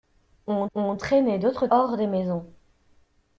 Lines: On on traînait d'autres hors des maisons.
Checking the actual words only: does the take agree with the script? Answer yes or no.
yes